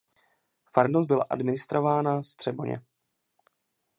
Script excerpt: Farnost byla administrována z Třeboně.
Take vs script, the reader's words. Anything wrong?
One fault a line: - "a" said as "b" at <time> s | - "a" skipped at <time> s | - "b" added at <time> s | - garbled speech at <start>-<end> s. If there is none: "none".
none